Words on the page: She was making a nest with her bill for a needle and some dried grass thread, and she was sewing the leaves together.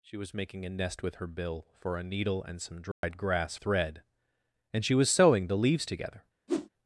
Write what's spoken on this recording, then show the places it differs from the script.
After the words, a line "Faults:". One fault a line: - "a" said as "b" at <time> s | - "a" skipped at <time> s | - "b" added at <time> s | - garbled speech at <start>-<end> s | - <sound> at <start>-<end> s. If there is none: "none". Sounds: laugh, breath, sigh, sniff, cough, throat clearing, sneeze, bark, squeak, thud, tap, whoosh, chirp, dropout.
She was making a nest with her bill for a needle and some dried grass thread, and she was sewing the leaves together.
Faults:
- dropout at 2.9-3.0 s
- whoosh at 6.5-6.7 s